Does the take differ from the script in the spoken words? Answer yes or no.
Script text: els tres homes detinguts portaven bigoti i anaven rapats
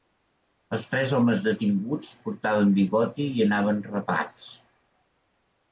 no